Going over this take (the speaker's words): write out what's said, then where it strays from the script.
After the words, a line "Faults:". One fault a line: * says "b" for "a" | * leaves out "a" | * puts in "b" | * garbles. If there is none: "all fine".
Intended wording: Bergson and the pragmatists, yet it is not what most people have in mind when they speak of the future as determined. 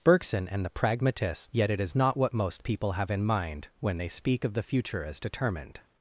Bergson and the pragmatists, yet it is not what most people have in mind when they speak of the future as determined.
Faults:
all fine